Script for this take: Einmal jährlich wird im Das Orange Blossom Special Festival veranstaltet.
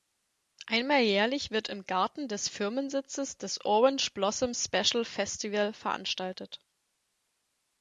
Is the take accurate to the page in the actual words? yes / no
no